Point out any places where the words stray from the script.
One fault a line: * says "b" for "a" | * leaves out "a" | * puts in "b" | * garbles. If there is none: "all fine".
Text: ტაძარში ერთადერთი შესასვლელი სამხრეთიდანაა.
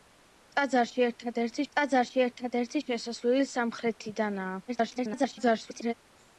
* puts in "ტაძარში ერთადერთი"
* garbles